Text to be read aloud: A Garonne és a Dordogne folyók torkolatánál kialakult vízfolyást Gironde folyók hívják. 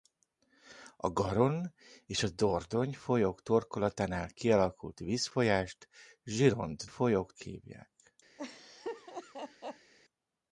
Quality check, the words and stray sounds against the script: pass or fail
fail